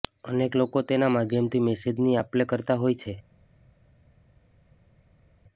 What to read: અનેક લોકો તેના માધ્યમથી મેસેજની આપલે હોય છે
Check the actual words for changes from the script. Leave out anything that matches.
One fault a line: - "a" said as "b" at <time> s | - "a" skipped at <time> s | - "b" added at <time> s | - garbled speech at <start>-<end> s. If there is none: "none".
- "કરતા" added at 2.5 s